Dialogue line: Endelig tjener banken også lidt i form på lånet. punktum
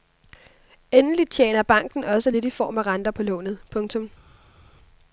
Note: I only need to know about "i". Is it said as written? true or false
true